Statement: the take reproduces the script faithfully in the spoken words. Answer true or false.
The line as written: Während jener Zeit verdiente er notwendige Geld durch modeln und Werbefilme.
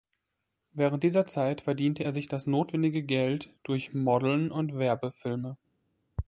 false